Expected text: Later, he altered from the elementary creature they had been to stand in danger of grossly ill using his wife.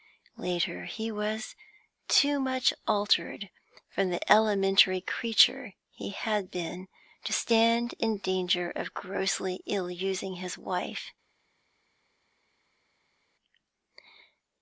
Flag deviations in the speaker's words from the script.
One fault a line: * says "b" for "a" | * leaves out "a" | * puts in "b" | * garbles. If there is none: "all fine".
* puts in "was too much"
* says "he" for "they"